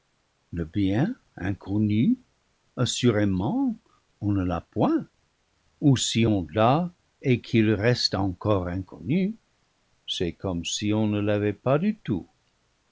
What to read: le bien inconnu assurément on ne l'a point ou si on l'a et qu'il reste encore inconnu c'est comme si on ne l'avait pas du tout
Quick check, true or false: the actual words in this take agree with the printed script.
true